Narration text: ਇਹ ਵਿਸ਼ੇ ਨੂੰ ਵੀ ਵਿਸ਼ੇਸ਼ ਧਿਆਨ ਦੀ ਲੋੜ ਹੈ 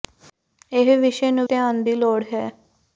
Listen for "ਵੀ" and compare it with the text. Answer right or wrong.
wrong